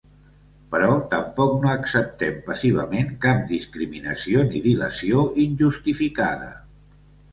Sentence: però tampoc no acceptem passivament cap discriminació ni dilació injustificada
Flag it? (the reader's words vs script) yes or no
no